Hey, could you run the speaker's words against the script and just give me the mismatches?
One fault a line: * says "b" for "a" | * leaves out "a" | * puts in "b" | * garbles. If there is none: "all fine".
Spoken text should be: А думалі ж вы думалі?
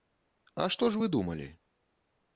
* says "што" for "думалі"